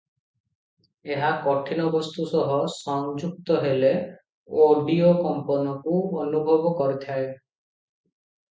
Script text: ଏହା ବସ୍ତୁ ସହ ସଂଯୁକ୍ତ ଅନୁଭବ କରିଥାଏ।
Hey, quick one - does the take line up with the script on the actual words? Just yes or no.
no